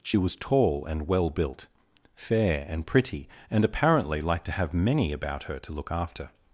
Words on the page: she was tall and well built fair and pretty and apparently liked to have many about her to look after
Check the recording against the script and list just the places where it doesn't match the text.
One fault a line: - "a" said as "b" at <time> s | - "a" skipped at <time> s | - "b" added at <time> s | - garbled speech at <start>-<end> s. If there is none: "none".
none